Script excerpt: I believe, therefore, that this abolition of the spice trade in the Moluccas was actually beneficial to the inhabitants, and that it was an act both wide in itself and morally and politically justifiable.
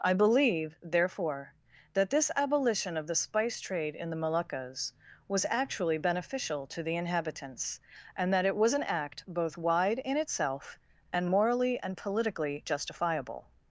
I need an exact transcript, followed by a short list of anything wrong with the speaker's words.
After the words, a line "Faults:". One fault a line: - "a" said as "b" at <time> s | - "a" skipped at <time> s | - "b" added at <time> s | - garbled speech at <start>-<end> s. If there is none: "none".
I believe, therefore, that this abolition of the spice trade in the Moluccas was actually beneficial to the inhabitants, and that it was an act both wide in itself and morally and politically justifiable.
Faults:
none